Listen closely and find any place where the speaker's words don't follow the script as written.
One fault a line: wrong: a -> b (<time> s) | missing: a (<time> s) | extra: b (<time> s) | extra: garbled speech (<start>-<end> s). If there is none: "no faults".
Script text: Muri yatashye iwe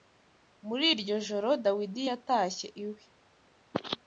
extra: iryo joro Dawidi (0.9 s)